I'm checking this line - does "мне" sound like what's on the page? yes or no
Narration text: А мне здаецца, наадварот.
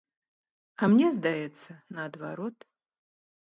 yes